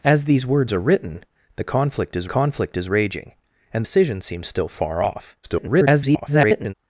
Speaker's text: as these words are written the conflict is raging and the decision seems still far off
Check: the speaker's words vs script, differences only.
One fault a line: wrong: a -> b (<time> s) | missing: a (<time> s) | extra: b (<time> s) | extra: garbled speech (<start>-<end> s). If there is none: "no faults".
extra: conflict is (2.2 s)
missing: the (3.8 s)
extra: garbled speech (5.4-6.7 s)